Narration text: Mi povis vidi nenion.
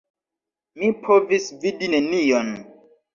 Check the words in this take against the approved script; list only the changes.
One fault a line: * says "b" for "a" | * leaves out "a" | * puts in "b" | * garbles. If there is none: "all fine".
all fine